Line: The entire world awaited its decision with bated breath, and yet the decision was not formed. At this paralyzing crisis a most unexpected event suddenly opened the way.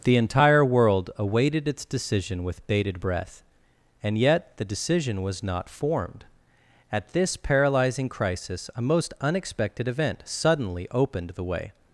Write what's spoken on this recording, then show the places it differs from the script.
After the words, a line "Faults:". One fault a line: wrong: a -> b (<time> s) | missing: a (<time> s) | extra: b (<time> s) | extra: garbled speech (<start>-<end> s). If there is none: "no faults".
The entire world awaited its decision with bated breath, and yet the decision was not formed. At this paralyzing crisis a most unexpected event suddenly opened the way.
Faults:
no faults